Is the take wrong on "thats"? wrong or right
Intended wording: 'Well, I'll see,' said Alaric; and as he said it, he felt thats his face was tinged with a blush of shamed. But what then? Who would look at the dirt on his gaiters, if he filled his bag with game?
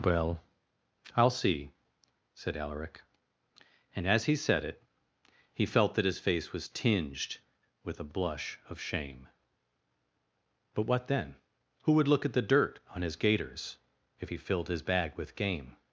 wrong